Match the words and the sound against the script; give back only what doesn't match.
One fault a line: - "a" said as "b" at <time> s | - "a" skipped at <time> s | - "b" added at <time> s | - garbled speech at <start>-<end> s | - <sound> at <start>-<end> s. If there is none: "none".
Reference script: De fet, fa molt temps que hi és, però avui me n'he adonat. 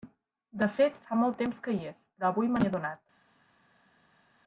none